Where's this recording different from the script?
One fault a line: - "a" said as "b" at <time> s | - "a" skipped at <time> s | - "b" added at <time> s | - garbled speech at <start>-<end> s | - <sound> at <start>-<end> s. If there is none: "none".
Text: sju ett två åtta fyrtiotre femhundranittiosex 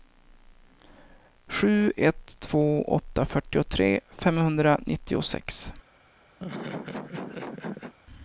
- laugh at 6.4-7.9 s